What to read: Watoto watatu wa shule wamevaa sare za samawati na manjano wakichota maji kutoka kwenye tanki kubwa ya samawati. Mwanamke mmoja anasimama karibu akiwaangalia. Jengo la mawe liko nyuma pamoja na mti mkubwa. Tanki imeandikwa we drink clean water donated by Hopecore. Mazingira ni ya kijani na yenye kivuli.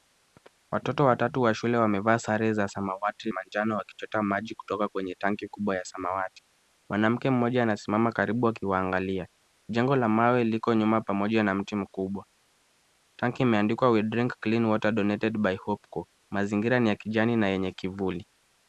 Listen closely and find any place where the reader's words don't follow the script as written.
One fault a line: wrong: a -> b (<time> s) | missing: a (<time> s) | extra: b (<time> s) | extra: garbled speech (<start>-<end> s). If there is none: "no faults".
missing: na (3.3 s)